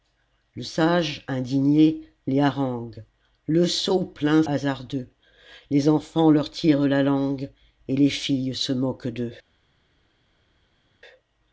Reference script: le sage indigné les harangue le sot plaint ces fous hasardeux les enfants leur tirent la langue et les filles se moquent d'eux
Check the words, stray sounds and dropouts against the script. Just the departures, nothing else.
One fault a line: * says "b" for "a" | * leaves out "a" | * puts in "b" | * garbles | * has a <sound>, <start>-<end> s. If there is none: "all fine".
* leaves out "ces fous"